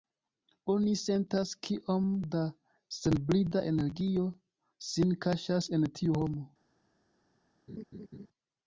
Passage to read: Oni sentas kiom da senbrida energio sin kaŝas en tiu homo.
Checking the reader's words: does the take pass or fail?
pass